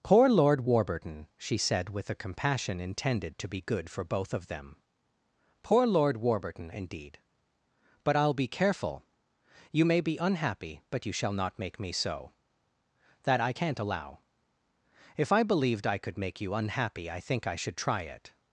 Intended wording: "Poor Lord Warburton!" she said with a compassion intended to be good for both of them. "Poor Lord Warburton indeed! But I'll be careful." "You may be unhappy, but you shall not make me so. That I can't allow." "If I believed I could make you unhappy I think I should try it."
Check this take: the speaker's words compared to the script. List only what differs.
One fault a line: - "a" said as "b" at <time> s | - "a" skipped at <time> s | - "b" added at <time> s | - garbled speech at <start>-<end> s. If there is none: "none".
none